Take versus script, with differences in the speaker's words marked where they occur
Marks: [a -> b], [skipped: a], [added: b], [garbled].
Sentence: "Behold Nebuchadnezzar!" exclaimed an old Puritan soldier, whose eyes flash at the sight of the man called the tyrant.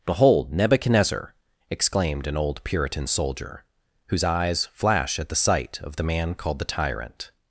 "Behold Nebuchadnezzar!" exclaimed an old Puritan soldier, whose eyes flash at the sight of the man called the tyrant.